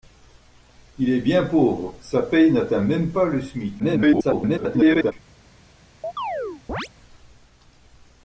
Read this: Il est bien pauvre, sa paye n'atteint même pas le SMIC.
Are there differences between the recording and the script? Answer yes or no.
yes